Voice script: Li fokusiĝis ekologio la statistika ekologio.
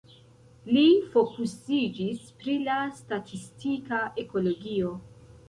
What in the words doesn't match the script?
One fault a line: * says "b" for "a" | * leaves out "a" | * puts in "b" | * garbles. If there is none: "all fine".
* says "pri" for "ekologio"